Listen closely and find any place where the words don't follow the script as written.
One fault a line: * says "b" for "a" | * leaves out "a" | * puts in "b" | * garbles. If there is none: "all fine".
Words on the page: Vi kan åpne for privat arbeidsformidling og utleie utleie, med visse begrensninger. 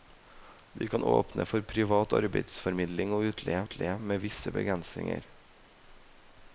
all fine